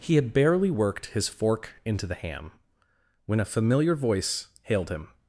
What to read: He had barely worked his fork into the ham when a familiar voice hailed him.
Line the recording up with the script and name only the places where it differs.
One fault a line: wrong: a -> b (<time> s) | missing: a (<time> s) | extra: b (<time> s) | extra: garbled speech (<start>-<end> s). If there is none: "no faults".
no faults